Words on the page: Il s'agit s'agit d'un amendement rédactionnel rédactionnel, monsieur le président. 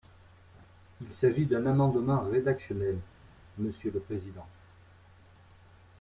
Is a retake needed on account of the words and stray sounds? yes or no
yes